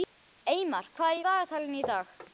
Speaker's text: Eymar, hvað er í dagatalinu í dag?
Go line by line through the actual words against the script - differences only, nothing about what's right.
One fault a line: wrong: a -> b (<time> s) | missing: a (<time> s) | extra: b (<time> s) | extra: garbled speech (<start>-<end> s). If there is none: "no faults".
no faults